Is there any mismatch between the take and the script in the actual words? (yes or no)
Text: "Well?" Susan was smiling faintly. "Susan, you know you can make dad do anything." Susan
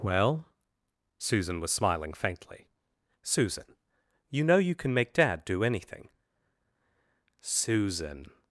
no